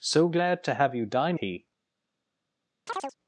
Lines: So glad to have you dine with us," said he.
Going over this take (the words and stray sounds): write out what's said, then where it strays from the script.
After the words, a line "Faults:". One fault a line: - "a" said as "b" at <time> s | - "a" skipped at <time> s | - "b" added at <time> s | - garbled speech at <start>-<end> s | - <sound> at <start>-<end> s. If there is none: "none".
So glad to have you dine he.
Faults:
- "with us said" skipped at 1.4 s
- chirp at 2.9-3.2 s